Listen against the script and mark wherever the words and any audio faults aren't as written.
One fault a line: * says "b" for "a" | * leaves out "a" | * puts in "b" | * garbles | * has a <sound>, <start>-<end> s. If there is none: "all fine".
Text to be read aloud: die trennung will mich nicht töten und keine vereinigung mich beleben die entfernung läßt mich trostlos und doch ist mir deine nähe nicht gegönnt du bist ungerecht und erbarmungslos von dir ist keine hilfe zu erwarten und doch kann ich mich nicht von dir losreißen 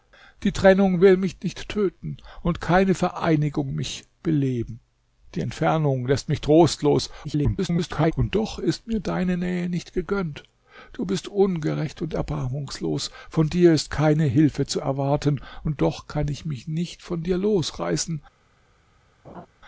* garbles
* has a laugh, 19.2-19.5 s